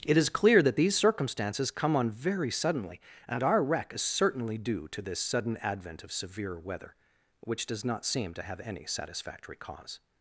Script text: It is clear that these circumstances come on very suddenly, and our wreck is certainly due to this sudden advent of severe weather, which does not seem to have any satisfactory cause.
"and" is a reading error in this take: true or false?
false